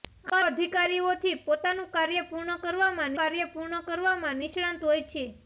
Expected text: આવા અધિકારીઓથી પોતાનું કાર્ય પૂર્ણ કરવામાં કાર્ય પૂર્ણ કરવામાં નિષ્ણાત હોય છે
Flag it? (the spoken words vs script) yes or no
no